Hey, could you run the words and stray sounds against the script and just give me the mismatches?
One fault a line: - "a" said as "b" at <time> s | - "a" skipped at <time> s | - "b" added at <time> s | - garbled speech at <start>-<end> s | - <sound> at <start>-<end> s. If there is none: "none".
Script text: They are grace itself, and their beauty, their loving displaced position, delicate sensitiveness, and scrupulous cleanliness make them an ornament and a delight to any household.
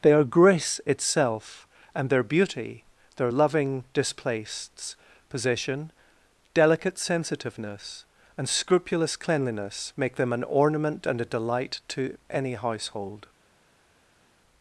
none